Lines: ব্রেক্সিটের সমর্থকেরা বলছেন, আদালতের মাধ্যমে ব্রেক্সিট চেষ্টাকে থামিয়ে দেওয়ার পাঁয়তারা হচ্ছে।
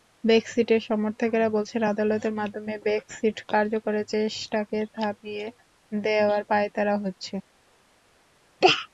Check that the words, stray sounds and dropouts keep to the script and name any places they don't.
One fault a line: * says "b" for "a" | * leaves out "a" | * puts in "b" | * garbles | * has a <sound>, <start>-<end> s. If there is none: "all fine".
* puts in "কার্যকরের"